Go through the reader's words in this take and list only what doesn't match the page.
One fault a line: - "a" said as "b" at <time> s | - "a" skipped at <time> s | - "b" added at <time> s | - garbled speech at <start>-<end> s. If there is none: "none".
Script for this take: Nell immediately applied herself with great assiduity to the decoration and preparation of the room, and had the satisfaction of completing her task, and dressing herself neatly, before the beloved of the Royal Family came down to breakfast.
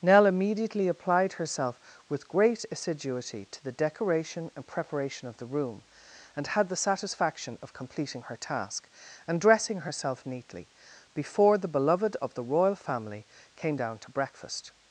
none